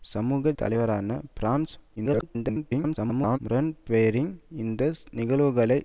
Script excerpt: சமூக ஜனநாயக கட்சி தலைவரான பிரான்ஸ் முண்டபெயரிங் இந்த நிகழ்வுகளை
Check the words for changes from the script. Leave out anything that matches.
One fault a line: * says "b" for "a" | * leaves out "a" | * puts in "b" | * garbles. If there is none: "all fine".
* leaves out "ஜனநாயக கட்சி"
* garbles